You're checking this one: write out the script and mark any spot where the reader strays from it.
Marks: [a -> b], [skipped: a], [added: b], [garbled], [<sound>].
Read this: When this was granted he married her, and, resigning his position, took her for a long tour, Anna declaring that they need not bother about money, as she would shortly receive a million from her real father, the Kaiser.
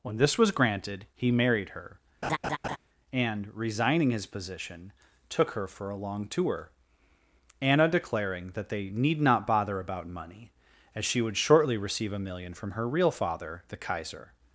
When this was granted he married her, [laugh] and, resigning his position, took her for a long tour, Anna declaring that they need not bother about money, as she would shortly receive a million from her real father, the Kaiser.